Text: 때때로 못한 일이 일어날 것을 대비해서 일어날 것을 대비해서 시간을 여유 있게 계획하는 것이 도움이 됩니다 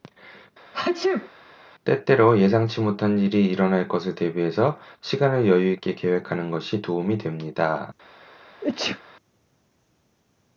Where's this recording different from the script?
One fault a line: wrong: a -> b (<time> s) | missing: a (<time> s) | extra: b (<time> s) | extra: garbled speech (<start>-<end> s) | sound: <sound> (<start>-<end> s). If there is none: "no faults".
sound: sneeze (0.7-1.3 s)
extra: 예상치 (2.4 s)
missing: 일어날 것을 대비해서 (4.8 s)
sound: sneeze (8.6-9.0 s)